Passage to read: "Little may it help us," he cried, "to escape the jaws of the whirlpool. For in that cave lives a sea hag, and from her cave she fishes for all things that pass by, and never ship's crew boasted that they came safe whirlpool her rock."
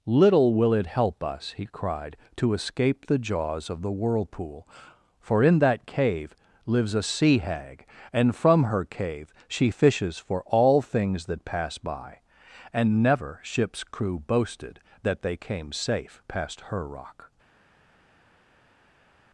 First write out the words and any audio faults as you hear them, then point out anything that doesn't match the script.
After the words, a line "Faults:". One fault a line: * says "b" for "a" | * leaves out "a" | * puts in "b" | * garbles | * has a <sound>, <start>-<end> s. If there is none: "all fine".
"Little will it help us," he cried, "to escape the jaws of the whirlpool. For in that cave lives a sea hag, and from her cave she fishes for all things that pass by, and never ship's crew boasted that they came safe past her rock."
Faults:
* says "will" for "may"
* says "past" for "whirlpool"